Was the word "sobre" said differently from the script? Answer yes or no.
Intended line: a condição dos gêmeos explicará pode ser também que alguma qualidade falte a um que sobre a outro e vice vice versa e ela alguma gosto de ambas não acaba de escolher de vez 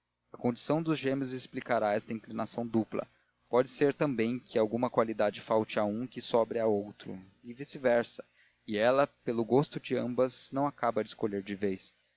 no